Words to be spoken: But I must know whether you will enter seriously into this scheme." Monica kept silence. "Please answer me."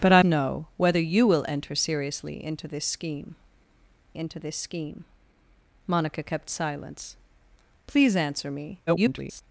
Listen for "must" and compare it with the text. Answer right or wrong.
wrong